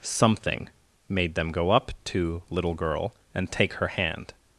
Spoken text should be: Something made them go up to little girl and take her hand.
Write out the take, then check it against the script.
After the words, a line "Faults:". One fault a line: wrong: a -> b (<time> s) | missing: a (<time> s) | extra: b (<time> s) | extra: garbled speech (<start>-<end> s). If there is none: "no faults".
Something made them go up to little girl and take her hand.
Faults:
no faults